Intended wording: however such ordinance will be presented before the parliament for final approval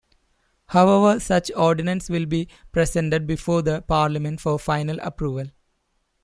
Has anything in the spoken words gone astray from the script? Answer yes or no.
no